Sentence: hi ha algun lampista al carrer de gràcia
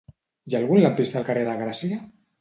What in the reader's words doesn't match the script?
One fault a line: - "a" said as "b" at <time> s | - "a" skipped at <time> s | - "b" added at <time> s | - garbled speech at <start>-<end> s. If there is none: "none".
none